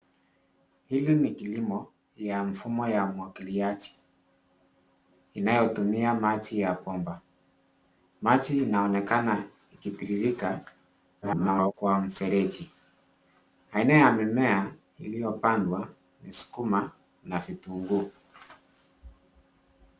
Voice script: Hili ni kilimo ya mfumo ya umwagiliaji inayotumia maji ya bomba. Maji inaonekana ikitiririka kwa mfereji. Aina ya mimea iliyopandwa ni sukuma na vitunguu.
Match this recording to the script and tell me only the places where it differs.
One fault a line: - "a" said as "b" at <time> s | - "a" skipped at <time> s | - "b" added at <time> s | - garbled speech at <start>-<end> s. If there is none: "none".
- garbled speech at 11.2-11.7 s